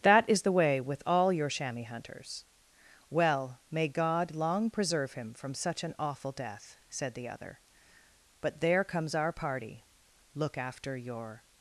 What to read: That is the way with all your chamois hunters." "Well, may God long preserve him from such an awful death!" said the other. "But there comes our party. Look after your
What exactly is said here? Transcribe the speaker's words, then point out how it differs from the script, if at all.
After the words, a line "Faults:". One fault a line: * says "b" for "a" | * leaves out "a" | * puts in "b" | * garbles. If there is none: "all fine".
That is the way with all your chamois hunters." "Well, may God long preserve him from such an awful death!" said the other. "But there comes our party. Look after your
Faults:
all fine